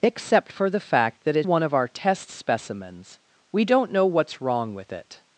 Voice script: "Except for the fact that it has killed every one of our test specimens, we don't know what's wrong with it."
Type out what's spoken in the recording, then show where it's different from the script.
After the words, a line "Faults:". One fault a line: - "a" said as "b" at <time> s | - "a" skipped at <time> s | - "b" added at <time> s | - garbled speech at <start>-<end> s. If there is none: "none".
"Except for the fact that it one of our test specimens, we don't know what's wrong with it."
Faults:
- "has killed every" skipped at 1.5 s